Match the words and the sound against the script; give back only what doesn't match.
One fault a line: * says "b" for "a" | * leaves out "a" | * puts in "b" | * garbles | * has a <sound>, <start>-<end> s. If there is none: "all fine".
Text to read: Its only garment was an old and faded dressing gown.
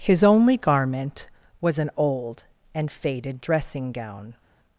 * says "His" for "Its"